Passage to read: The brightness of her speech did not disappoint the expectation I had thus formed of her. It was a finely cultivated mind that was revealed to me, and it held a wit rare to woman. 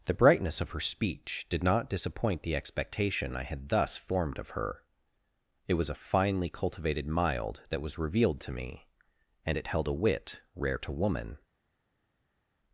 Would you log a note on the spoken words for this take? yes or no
yes